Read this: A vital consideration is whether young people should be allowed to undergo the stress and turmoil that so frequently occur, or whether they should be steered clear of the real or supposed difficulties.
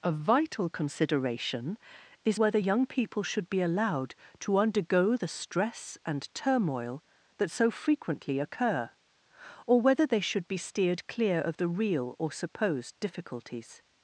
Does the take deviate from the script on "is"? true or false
false